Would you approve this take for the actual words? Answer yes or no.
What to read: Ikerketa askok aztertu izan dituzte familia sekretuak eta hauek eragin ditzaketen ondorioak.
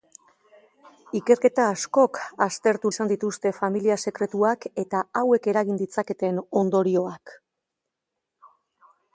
yes